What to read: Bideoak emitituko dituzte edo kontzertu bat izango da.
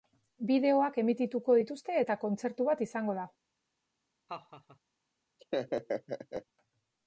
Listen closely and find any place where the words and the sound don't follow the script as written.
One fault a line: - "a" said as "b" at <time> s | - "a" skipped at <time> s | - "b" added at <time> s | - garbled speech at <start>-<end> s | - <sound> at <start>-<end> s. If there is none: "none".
- "edo" said as "eta" at 2.0 s
- laugh at 4.3-4.8 s
- laugh at 5.4-6.5 s